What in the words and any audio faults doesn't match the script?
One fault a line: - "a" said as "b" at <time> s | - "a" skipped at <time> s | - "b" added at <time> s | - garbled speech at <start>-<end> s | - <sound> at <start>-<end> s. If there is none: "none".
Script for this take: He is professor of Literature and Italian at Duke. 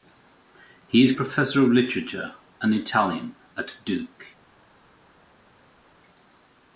none